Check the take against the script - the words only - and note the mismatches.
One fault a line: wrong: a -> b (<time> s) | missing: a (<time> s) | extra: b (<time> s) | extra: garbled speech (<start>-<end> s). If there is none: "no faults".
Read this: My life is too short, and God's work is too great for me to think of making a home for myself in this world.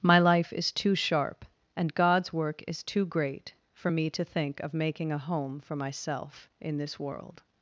wrong: short -> sharp (0.9 s)